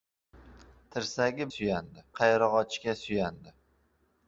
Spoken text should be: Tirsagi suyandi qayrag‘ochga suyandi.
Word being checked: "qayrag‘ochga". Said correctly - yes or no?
yes